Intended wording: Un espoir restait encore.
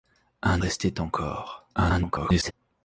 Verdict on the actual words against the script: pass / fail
fail